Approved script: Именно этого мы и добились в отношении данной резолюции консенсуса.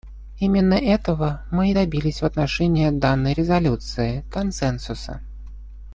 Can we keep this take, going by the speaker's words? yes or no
yes